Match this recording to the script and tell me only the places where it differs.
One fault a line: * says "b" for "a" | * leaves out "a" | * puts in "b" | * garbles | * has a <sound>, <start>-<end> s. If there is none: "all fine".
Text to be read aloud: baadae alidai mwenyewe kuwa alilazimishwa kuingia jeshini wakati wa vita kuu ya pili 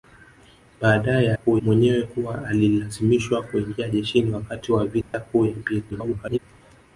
* says "kuu" for "alidai"
* has a dropout, 5.0-5.1 s
* garbles